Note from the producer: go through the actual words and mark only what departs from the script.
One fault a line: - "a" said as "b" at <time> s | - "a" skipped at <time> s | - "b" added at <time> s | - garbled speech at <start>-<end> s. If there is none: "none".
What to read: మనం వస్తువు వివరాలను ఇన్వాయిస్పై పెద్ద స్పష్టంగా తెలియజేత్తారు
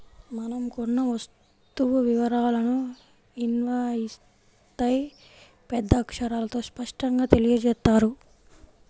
- "కొన్న" added at 0.7 s
- "అక్షరాలతో" added at 6.0 s